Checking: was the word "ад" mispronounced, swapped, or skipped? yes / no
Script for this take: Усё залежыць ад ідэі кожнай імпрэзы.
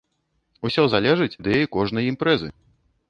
yes